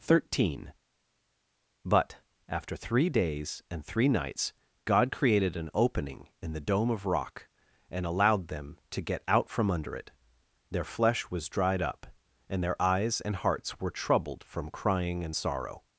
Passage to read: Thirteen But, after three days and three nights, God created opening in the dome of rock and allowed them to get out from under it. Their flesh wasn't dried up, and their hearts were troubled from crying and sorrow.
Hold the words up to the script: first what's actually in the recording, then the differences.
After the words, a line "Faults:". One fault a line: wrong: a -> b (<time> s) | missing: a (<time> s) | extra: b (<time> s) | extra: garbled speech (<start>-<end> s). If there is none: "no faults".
Thirteen But, after three days and three nights, God created an opening in the dome of rock and allowed them to get out from under it. Their flesh was dried up, and their eyes and hearts were troubled from crying and sorrow.
Faults:
extra: an (5.6 s)
wrong: wasn't -> was (11.3 s)
extra: eyes and (12.8 s)